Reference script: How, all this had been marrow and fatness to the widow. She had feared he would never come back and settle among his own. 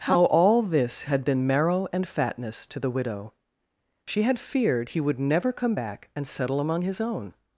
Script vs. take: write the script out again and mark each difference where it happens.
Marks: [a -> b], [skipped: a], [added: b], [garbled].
How, all this had been marrow and fatness to the widow. She had feared he would never come back and settle among his own.